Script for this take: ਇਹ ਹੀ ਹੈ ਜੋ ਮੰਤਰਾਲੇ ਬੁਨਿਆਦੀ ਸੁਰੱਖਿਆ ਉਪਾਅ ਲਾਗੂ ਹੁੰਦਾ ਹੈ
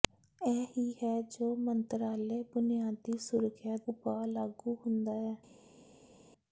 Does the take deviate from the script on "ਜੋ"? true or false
false